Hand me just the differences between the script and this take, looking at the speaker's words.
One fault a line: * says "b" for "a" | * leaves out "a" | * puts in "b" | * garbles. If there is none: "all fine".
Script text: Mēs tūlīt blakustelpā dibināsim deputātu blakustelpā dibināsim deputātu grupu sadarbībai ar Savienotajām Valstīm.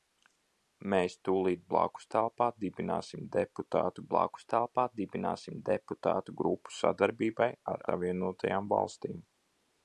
all fine